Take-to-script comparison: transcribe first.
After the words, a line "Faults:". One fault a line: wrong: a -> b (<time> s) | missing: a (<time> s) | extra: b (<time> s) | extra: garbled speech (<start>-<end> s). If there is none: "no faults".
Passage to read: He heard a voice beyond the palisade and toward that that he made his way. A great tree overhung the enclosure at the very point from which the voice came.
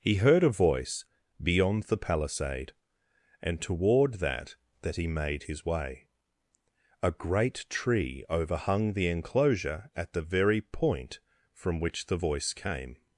He heard a voice beyond the palisade and toward that that he made his way. A great tree overhung the enclosure at the very point from which the voice came.
Faults:
no faults